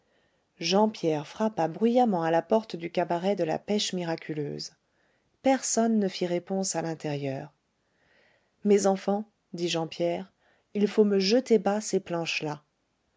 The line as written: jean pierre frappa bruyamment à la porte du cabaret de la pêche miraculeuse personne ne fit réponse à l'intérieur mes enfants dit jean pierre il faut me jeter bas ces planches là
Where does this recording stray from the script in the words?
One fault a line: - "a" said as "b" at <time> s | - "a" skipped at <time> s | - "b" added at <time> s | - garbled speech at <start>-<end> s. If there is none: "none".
none